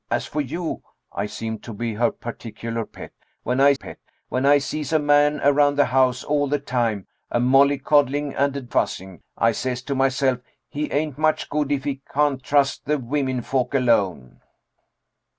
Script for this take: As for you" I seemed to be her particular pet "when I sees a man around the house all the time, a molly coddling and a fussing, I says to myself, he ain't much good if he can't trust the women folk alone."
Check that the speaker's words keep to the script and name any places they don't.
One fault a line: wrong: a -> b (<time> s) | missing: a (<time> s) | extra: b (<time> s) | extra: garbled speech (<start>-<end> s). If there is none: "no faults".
extra: pet when I (3.7 s)